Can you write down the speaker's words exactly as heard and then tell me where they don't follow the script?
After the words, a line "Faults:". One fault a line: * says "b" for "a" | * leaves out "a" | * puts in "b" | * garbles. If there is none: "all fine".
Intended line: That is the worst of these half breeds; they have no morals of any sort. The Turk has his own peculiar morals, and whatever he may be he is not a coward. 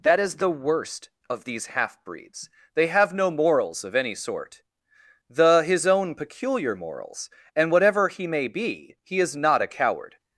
That is the worst of these half breeds; they have no morals of any sort. The his own peculiar morals, and whatever he may be he is not a coward.
Faults:
* leaves out "Turk has"